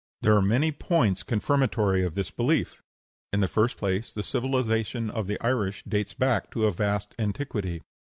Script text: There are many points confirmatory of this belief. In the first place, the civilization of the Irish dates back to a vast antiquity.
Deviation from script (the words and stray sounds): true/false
false